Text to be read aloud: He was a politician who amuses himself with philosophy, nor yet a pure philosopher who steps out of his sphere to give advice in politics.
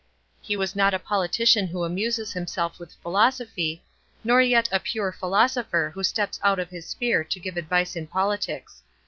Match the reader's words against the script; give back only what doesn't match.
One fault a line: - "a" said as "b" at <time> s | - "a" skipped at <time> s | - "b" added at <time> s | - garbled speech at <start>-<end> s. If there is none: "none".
- "not" added at 0.7 s